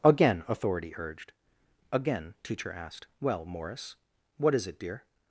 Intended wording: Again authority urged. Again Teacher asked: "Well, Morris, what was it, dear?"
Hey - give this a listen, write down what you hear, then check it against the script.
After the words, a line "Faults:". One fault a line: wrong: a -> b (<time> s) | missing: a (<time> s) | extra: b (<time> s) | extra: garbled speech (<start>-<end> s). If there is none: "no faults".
Again authority urged. Again Teacher asked: "Well, Morris, what is it, dear?"
Faults:
wrong: was -> is (4.5 s)